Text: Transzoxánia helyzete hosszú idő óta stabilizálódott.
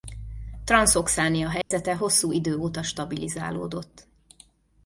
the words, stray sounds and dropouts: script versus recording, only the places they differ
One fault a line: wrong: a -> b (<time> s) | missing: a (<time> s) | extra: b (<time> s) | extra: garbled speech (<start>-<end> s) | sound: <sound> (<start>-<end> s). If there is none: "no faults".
sound: dropout (1.6-1.7 s)